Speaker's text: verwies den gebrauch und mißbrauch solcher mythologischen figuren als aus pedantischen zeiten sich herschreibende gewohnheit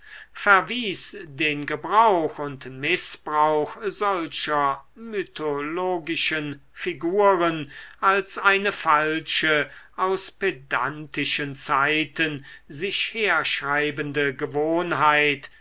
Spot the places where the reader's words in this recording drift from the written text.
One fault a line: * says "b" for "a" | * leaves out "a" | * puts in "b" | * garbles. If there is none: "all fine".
* puts in "eine falsche"